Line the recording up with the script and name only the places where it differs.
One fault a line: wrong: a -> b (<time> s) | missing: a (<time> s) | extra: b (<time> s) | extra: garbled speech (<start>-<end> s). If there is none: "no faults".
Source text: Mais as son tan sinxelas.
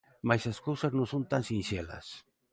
extra: cousas non (0.7 s)